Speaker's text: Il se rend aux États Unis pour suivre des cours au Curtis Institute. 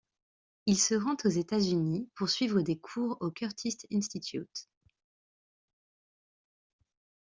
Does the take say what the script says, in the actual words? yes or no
yes